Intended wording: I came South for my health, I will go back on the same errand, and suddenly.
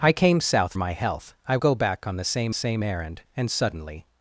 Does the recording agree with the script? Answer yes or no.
no